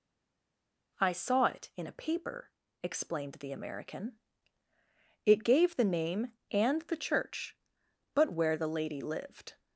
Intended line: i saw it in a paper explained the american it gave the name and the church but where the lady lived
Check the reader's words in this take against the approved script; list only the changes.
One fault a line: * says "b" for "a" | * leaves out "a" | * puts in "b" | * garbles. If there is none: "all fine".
all fine